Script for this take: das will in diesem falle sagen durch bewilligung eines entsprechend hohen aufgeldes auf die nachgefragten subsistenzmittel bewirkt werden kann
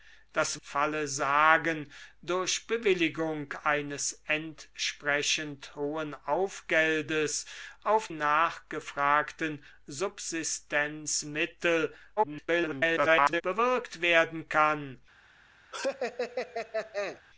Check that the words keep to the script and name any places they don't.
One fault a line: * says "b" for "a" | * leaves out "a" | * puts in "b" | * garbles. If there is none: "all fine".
* leaves out "will in diesem"
* leaves out "die"
* garbles